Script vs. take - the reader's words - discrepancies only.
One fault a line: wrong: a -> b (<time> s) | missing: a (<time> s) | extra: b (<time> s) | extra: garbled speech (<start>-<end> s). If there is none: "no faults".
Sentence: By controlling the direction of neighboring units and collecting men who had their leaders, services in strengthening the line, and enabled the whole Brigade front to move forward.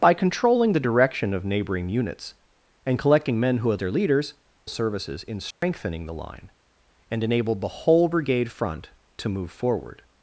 no faults